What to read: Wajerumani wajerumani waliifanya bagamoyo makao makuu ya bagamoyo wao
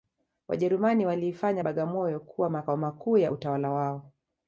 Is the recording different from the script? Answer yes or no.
yes